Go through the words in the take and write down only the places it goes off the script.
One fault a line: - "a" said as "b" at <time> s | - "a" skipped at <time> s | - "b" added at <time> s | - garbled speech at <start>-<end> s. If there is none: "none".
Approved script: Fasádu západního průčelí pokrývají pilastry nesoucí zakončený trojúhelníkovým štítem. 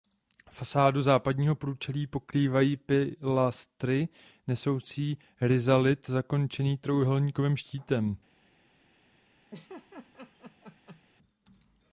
- "rizalit" added at 5.4 s